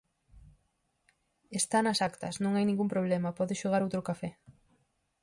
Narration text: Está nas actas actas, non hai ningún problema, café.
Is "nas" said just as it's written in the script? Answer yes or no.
yes